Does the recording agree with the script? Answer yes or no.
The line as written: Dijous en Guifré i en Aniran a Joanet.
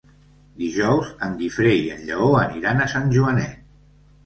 no